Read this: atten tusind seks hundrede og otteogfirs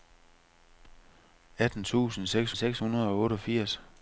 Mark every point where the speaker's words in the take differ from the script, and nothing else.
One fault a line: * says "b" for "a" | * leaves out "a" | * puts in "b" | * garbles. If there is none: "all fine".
* puts in "seks"